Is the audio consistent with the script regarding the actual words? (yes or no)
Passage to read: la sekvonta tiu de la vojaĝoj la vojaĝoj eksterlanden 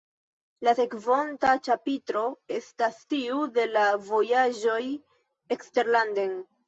no